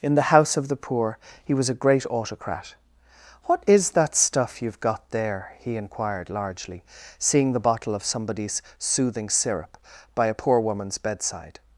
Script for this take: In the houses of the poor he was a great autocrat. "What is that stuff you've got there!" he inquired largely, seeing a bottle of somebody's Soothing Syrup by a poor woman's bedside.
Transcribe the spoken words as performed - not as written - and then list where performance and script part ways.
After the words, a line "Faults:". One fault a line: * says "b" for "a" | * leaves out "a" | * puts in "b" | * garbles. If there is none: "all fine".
In the house of the poor he was a great autocrat. "What is that stuff you've got there!" he inquired largely, seeing the bottle of somebody's Soothing Syrup by a poor woman's bedside.
Faults:
* says "house" for "houses"
* says "the" for "a"